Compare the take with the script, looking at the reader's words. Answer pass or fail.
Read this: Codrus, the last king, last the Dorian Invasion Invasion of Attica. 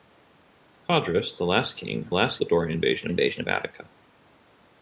pass